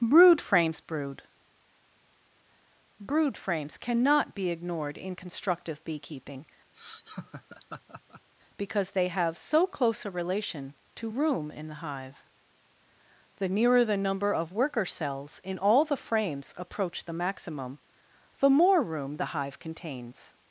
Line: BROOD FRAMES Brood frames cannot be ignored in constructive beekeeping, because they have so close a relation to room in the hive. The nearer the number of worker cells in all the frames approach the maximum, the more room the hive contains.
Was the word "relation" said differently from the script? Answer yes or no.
no